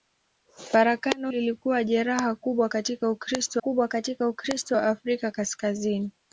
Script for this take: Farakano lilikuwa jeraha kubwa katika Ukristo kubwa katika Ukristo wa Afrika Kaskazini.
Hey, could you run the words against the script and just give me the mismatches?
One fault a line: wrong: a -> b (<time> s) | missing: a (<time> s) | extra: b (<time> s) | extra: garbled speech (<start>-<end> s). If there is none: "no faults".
no faults